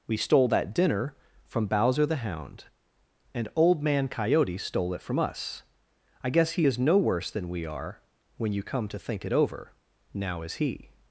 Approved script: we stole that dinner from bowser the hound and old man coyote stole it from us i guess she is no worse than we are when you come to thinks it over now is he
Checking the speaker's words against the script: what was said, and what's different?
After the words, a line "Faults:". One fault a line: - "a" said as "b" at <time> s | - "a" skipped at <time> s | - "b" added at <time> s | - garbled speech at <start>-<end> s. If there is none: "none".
we stole that dinner from bowser the hound and old man coyote stole it from us i guess he is no worse than we are when you come to think it over now is he
Faults:
- "she" said as "he" at 6.5 s
- "thinks" said as "think" at 9.0 s